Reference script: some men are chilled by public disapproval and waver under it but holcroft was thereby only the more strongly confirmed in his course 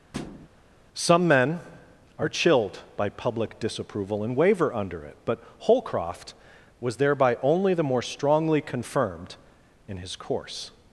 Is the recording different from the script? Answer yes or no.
no